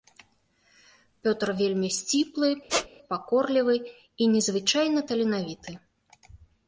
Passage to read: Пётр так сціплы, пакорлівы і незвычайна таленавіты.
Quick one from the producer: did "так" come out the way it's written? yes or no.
no